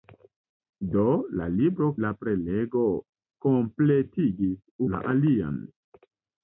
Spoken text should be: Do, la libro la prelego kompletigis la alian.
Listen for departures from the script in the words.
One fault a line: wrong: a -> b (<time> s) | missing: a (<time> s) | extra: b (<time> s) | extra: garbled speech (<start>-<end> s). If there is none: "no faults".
no faults